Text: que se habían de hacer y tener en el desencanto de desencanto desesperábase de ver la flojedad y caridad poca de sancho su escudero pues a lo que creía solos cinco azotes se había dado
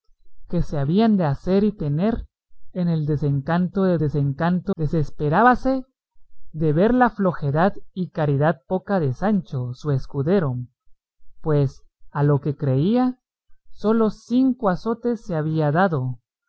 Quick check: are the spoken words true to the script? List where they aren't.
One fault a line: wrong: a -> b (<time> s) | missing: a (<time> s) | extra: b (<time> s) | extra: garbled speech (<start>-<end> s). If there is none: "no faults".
no faults